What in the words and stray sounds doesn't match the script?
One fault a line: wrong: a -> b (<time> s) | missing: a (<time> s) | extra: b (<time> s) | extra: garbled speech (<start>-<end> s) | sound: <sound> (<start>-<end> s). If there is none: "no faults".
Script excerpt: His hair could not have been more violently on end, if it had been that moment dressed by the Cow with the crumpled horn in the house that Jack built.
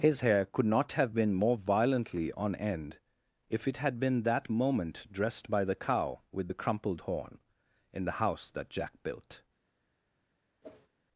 sound: whoosh (10.6-10.9 s)